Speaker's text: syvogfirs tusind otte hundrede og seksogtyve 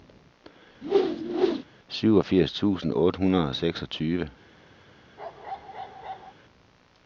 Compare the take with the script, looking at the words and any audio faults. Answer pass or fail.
fail